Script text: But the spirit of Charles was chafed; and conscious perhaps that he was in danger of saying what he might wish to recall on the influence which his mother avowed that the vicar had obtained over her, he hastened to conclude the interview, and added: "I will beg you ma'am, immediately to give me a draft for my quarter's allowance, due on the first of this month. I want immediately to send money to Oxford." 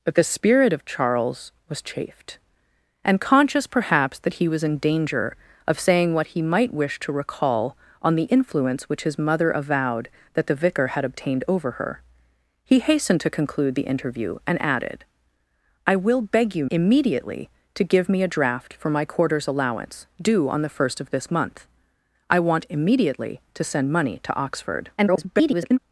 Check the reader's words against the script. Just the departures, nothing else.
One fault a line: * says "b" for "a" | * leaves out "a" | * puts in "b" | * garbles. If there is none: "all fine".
* leaves out "ma'am"
* garbles